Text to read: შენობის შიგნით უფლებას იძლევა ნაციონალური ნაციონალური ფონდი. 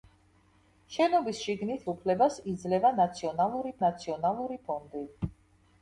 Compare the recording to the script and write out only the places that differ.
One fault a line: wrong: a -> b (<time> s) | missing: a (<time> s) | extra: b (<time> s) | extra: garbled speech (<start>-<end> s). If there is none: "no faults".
no faults